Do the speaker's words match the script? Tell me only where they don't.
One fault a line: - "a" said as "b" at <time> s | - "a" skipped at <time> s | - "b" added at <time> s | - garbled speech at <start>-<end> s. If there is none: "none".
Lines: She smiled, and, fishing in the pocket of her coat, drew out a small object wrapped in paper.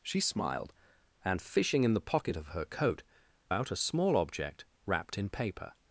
- "drew" skipped at 3.0 s